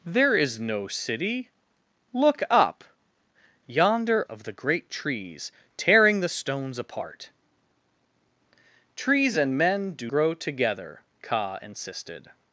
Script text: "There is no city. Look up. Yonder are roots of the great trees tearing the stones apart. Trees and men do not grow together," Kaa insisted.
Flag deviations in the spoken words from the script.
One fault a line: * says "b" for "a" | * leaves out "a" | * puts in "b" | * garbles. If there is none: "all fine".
* leaves out "are roots"
* leaves out "not"